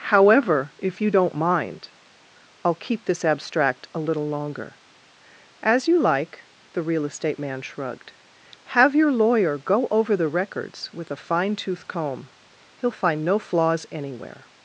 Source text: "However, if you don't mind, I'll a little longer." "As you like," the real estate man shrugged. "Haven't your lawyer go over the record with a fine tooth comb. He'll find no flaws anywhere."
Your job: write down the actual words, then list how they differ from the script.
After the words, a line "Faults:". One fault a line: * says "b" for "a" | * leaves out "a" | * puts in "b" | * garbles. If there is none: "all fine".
"However, if you don't mind, I'll keep this abstract a little longer." "As you like," the real estate man shrugged. "Have your lawyer go over the records with a fine tooth comb. He'll find no flaws anywhere."
Faults:
* puts in "keep this abstract"
* says "Have" for "Haven't"
* says "records" for "record"